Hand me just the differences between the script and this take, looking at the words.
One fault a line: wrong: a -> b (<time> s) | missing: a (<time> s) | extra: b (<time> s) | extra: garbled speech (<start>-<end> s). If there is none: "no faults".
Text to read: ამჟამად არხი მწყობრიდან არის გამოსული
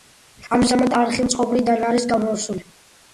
no faults